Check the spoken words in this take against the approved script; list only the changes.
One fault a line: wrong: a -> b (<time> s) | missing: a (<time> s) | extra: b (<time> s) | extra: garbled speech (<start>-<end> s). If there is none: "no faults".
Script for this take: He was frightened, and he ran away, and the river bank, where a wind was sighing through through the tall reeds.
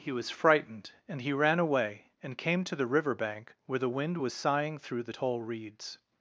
extra: came to (2.4 s)
wrong: a -> the (3.8 s)
missing: through (5.0 s)